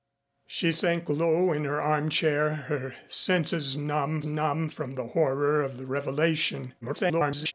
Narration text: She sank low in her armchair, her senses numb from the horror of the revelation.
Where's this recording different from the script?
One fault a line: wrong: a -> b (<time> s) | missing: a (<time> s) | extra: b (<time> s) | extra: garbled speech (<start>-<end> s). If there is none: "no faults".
extra: numb (4.3 s)
extra: garbled speech (6.8-7.5 s)